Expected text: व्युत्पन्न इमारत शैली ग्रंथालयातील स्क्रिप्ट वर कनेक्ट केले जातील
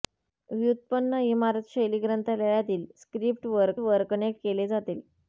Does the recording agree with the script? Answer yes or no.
no